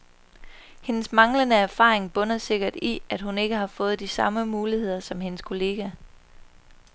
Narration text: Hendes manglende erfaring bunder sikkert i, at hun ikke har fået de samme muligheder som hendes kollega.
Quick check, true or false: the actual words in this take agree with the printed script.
true